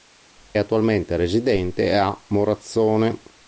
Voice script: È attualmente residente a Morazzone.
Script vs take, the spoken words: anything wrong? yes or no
no